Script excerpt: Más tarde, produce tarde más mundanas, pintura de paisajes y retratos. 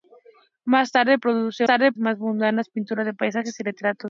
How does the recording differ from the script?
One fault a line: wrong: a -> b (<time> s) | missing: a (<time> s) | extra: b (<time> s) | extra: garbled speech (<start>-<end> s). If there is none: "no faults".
no faults